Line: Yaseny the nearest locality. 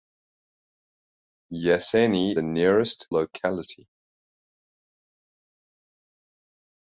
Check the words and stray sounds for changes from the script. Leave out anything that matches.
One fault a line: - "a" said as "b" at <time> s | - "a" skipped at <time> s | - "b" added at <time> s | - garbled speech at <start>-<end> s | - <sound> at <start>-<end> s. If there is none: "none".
none